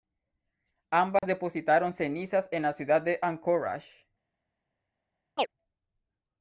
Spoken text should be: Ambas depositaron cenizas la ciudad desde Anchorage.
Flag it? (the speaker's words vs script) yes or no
yes